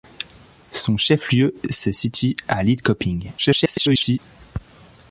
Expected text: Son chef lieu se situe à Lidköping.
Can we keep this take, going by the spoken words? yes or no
no